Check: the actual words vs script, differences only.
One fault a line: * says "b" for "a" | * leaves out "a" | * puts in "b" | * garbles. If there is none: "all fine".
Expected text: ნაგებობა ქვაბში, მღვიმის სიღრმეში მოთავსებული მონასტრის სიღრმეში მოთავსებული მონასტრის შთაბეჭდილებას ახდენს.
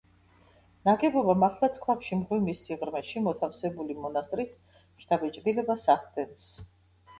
* puts in "მართლაც"
* leaves out "სიღრმეში მოთავსებული მონასტრის"